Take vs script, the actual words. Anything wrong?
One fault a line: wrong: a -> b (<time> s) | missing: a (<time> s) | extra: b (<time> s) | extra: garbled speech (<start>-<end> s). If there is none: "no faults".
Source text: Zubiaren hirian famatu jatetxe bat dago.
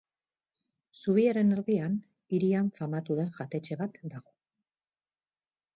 extra: erdian (1.5 s)
extra: den (3.2 s)